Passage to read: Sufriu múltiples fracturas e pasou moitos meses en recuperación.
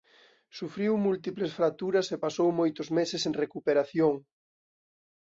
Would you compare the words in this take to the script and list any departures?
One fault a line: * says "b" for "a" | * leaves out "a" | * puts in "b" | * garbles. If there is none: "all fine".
all fine